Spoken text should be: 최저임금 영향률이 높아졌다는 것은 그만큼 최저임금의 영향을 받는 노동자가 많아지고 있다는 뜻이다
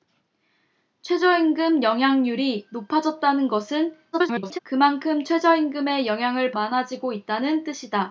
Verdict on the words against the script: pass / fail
fail